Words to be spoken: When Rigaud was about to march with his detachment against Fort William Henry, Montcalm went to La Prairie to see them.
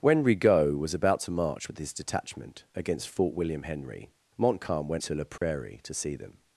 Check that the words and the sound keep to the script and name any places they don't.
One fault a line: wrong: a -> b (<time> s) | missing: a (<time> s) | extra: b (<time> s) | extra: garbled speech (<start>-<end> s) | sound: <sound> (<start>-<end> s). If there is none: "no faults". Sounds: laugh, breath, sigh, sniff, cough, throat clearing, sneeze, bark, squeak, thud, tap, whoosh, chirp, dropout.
sound: dropout (5.4-5.4 s)